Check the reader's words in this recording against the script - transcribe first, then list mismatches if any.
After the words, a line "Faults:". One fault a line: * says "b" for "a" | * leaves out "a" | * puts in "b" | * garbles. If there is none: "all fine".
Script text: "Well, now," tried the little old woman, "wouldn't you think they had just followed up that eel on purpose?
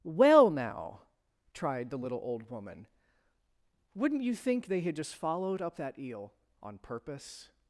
"Well, now," tried the little old woman, "wouldn't you think they had just followed up that eel on purpose?
Faults:
all fine